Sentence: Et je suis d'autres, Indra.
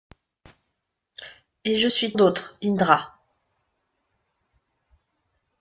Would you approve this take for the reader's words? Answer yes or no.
yes